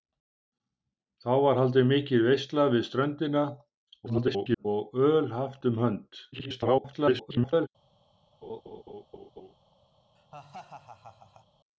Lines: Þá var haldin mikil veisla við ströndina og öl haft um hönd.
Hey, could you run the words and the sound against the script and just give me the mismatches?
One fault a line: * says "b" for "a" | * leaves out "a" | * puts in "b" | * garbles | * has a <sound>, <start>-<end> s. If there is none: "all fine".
* garbles
* garbles
* has a laugh, 8.4-9.5 s
* has a laugh, 10.2-11.5 s